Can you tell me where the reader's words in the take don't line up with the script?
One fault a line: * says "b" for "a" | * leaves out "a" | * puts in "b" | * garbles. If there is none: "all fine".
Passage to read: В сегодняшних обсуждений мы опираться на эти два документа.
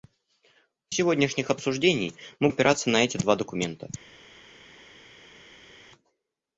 all fine